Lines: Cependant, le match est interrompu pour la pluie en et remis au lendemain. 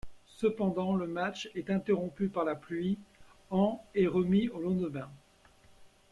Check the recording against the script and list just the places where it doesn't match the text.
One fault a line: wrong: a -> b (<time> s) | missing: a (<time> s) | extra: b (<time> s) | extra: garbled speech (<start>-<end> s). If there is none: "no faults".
wrong: pour -> par (2.3 s)